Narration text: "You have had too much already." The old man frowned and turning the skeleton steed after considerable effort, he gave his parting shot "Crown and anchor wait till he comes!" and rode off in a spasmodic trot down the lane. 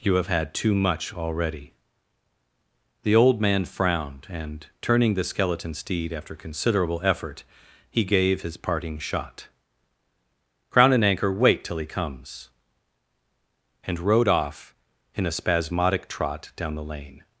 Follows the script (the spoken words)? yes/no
yes